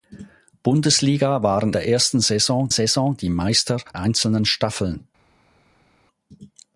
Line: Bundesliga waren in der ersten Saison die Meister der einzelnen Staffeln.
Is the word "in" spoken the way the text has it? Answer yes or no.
no